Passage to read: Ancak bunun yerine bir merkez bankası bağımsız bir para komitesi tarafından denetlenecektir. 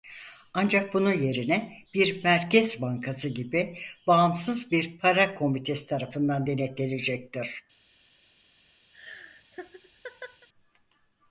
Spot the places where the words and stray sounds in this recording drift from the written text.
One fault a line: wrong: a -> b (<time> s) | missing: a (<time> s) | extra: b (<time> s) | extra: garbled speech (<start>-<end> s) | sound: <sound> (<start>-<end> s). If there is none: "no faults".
extra: gibi (3.3 s)
sound: laugh (8.9-10.5 s)